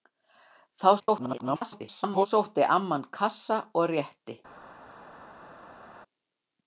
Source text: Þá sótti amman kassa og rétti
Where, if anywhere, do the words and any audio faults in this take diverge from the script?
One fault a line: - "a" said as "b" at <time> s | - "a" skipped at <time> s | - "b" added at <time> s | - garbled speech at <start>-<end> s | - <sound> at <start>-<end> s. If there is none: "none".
- garbled speech at 1.0-2.3 s